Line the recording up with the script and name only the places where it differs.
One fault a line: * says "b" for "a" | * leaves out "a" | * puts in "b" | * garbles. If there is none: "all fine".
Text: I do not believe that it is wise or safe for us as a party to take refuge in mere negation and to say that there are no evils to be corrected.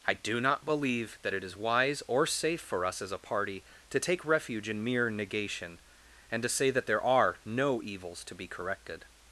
all fine